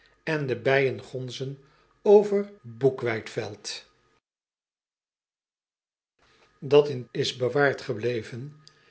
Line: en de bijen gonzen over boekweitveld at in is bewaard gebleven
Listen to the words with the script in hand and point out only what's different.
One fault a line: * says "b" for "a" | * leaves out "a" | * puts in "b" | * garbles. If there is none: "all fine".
all fine